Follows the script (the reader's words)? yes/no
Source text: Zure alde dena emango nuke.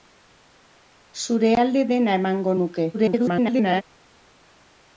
no